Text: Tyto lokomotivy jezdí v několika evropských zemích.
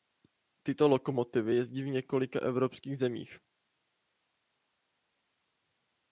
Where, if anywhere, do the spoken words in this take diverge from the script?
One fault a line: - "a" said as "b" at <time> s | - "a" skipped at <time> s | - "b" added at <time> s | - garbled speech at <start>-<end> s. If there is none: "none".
none